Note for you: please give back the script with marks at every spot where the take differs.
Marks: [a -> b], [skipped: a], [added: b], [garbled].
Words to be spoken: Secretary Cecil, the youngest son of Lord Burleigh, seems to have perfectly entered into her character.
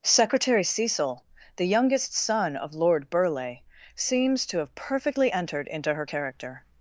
Secretary Cecil, the youngest son of Lord Burleigh, seems to have perfectly entered into her character.